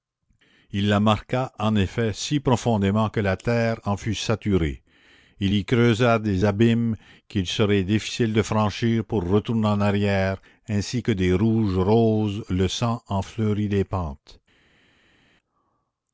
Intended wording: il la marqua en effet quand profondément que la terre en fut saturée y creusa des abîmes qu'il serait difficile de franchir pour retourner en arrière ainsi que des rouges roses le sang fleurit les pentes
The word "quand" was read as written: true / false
false